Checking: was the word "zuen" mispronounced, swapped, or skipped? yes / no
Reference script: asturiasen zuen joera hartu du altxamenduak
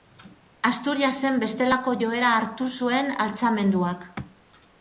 yes